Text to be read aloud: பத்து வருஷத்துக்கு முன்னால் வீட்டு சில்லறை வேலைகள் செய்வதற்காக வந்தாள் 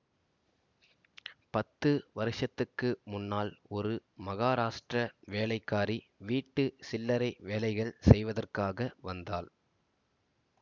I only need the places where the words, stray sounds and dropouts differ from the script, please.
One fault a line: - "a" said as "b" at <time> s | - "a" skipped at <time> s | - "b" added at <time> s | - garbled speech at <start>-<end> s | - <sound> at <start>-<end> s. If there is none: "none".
- "ஒரு மகாராஷ்டிர வேலைக்காரி" added at 3.7 s